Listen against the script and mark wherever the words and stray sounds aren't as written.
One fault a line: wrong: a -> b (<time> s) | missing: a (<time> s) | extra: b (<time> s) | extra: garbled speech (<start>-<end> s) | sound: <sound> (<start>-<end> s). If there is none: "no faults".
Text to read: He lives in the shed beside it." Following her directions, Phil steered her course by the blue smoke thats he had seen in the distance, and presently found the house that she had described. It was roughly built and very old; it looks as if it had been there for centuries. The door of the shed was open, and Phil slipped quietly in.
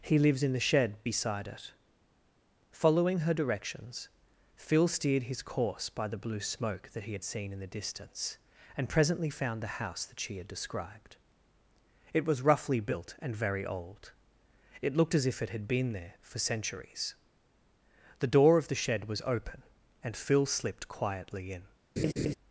wrong: her -> his (5.2 s)
wrong: thats -> that (6.9 s)
wrong: looks -> looked (15.0 s)
sound: laugh (22.0-22.3 s)